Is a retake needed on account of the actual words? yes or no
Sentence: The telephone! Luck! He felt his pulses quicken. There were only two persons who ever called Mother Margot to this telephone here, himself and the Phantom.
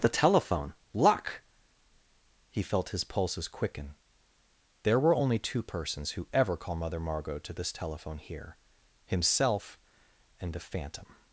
yes